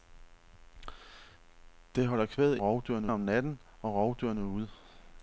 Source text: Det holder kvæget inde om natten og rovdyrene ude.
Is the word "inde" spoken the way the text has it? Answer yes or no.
no